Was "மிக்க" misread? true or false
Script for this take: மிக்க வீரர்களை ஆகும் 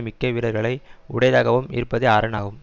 false